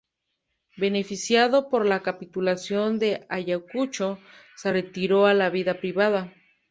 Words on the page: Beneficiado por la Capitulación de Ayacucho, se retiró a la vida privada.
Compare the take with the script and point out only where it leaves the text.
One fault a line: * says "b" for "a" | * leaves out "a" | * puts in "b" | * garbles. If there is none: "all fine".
all fine